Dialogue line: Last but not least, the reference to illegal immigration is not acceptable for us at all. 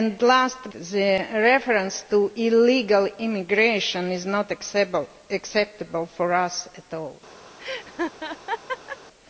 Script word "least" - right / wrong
wrong